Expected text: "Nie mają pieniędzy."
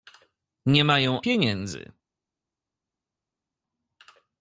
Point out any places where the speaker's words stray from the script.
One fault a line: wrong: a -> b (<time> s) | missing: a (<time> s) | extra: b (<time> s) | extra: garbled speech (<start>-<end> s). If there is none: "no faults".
no faults